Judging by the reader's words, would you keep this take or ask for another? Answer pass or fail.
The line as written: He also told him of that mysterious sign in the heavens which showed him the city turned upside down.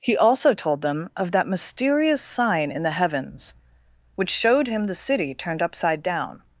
fail